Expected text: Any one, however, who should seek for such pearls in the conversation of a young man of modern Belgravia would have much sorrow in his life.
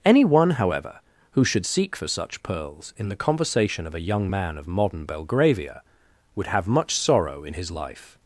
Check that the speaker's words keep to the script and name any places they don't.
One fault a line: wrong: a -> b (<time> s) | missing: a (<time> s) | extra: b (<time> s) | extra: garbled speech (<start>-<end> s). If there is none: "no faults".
no faults